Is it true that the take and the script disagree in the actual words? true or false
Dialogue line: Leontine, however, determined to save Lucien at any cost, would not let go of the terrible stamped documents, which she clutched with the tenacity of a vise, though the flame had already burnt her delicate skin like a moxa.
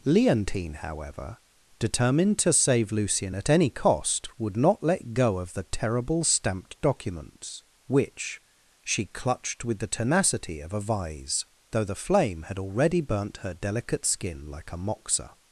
false